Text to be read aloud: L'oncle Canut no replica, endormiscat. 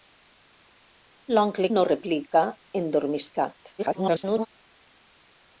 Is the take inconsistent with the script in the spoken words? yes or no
yes